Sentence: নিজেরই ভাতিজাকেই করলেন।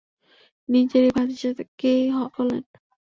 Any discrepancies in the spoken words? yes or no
no